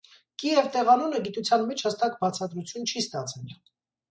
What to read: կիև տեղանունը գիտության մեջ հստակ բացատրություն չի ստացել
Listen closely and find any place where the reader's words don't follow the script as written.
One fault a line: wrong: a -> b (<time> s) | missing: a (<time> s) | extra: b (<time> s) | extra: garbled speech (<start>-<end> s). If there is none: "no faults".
no faults